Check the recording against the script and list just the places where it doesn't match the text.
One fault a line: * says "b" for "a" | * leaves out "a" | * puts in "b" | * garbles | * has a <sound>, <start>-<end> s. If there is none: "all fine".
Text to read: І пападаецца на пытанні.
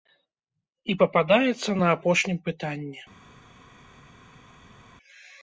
* puts in "апошнім"